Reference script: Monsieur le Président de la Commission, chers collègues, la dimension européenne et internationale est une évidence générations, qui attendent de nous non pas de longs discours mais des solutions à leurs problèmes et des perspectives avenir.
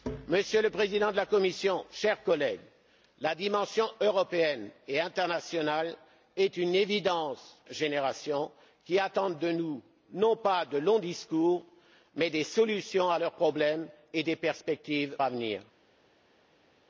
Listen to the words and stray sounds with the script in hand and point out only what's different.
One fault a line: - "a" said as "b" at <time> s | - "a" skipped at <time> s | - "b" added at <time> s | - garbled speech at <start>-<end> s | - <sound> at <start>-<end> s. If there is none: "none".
none